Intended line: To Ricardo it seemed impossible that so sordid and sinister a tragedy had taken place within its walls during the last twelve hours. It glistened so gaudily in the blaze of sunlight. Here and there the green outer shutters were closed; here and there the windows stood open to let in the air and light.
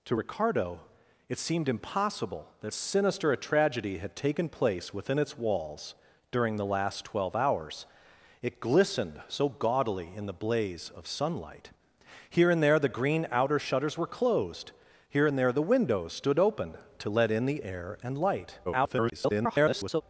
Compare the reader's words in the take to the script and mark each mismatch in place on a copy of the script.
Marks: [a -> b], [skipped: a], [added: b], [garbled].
To Ricardo it seemed impossible that [skipped: so sordid and] sinister a tragedy had taken place within its walls during the last twelve hours. It glistened so gaudily in the blaze of sunlight. Here and there the green outer shutters were closed; here and there the windows stood open to let in the air and light. [garbled]